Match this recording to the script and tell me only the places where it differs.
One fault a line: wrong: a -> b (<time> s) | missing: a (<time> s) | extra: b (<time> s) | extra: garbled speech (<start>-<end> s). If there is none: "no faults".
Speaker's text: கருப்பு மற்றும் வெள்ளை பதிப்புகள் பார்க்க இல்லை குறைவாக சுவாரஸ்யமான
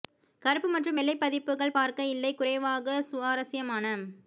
no faults